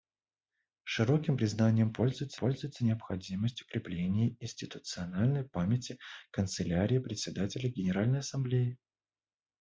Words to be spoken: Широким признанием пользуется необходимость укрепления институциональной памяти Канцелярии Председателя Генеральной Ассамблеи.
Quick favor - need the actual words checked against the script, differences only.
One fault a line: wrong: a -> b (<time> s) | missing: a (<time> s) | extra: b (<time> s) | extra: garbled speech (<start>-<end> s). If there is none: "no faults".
extra: пользуется (2.4 s)